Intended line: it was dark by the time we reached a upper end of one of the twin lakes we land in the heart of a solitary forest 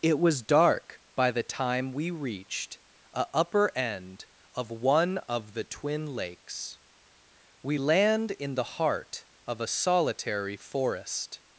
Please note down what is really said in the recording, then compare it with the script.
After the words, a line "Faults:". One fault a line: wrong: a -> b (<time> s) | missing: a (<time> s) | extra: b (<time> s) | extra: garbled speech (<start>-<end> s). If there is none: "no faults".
it was dark by the time we reached a upper end of one of the twin lakes we land in the heart of a solitary forest
Faults:
no faults